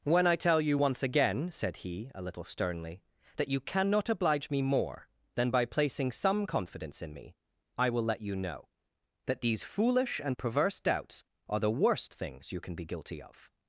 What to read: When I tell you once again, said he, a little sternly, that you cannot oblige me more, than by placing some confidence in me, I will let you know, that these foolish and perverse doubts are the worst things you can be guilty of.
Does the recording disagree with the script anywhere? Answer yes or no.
no